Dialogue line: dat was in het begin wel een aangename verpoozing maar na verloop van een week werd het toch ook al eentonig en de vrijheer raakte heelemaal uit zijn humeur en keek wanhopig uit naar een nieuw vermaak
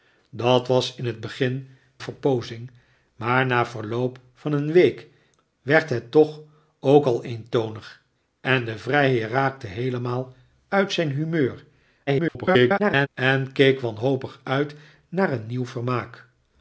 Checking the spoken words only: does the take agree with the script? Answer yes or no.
no